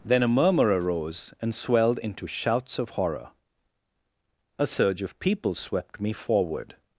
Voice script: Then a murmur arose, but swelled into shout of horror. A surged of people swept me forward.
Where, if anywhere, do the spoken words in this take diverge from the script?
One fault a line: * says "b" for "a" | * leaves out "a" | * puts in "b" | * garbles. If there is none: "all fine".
* says "and" for "but"
* says "shouts" for "shout"
* says "surge" for "surged"